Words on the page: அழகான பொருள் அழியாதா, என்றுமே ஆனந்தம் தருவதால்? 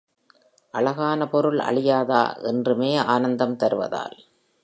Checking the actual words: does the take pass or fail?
pass